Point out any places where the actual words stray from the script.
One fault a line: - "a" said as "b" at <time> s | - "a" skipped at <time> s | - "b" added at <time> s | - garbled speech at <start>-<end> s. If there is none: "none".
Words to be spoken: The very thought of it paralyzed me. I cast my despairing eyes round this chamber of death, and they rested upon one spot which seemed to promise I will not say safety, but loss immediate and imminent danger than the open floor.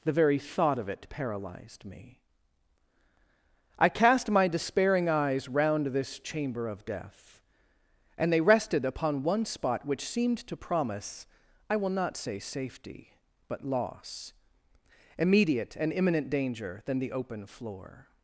none